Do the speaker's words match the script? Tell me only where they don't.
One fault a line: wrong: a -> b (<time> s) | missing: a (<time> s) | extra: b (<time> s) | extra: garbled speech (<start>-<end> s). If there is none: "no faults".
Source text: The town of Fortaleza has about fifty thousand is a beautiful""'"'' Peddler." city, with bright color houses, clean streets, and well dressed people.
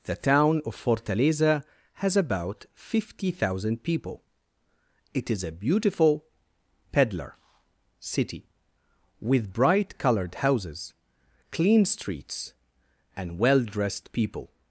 extra: people It (3.8 s)
wrong: color -> colored (10.0 s)